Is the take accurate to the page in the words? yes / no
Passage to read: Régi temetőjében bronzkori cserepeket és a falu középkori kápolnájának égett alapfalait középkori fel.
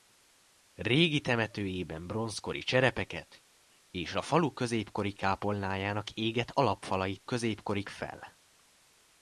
yes